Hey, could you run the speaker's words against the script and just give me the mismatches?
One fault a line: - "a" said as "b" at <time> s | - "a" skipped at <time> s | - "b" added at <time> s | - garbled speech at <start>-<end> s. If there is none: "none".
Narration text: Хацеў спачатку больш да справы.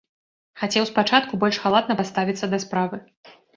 - "халатна паставіцца" added at 1.7 s